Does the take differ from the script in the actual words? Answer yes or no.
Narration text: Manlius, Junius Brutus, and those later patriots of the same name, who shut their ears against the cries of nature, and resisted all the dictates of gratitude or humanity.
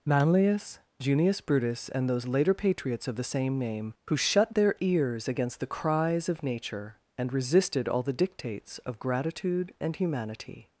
yes